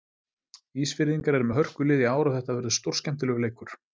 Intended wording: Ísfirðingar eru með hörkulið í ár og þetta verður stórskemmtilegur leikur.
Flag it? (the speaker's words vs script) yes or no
no